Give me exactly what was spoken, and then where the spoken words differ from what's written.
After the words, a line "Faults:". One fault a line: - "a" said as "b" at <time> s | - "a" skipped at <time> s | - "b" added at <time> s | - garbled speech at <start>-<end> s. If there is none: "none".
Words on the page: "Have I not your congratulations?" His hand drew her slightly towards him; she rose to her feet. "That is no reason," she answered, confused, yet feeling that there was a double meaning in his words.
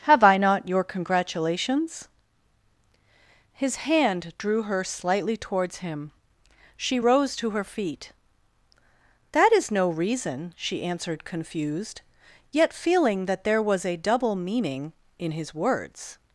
"Have I not your congratulations?" His hand drew her slightly towards him; she rose to her feet. "That is no reason," she answered, confused, yet feeling that there was a double meaning in his words.
Faults:
none